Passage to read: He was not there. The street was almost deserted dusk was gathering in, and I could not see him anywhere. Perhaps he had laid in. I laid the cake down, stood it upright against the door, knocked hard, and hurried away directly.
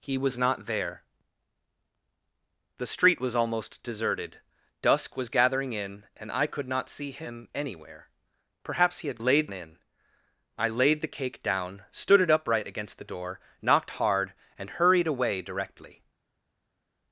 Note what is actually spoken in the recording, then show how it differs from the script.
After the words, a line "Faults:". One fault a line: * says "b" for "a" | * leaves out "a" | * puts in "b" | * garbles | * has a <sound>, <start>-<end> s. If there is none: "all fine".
He was not there. The street was almost deserted dusk was gathering in, and I could not see him anywhere. Perhaps he had laid in. I laid the cake down, stood it upright against the door, knocked hard, and hurried away directly.
Faults:
all fine